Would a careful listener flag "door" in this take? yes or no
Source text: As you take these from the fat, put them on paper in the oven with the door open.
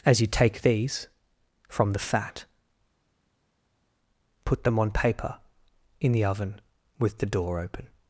no